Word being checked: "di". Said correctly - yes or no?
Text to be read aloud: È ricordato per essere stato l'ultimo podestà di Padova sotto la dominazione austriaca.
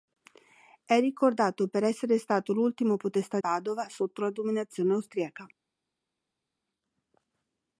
no